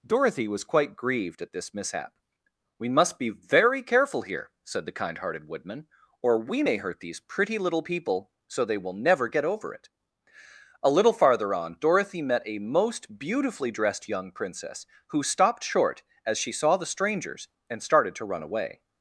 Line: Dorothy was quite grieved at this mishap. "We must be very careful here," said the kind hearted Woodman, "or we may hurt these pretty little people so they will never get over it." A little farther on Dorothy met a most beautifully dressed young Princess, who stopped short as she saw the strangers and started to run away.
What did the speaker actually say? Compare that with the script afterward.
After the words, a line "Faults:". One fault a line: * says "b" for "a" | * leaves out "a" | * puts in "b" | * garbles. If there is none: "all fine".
Dorothy was quite grieved at this mishap. "We must be very careful here," said the kind hearted Woodman, "or we may hurt these pretty little people so they will never get over it." A little farther on Dorothy met a most beautifully dressed young Princess, who stopped short as she saw the strangers and started to run away.
Faults:
all fine